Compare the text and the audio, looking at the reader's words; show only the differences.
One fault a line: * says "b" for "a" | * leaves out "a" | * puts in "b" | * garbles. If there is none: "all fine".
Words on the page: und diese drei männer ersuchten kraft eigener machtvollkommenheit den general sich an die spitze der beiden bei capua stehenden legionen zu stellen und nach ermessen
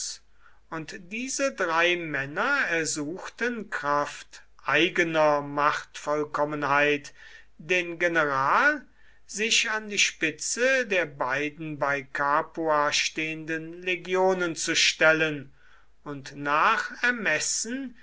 all fine